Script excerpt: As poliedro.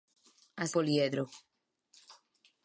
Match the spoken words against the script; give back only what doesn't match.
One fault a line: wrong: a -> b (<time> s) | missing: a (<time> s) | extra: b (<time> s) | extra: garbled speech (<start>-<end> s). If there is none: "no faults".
no faults